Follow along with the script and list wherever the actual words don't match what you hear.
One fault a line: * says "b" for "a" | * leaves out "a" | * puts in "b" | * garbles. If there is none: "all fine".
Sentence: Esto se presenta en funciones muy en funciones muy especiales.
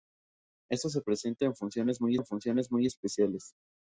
all fine